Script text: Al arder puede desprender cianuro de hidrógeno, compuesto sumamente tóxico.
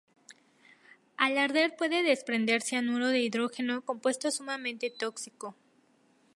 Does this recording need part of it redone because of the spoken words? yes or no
no